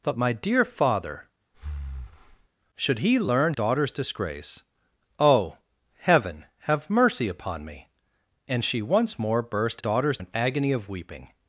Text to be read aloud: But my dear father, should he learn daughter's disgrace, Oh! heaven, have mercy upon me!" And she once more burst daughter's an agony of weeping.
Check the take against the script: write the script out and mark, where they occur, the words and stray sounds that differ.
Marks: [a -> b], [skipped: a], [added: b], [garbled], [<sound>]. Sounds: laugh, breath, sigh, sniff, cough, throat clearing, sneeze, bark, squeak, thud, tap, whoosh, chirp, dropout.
But my dear father, [breath] should he learn daughter's disgrace, Oh! heaven, have mercy upon me!" And she once more burst daughter's an agony of weeping.